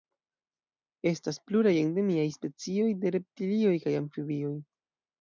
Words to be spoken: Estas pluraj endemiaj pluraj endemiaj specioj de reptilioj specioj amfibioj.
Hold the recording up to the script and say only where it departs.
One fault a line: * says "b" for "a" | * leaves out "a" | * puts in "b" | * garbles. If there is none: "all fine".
* leaves out "pluraj endemiaj"
* says "kaj" for "specioj"